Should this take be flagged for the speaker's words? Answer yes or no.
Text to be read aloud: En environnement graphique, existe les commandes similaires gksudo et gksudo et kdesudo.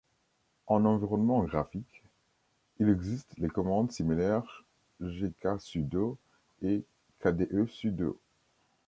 yes